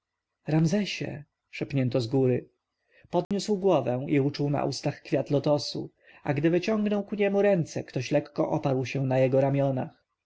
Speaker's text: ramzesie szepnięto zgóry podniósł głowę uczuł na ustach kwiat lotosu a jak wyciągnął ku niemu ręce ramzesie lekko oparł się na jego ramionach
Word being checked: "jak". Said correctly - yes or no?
no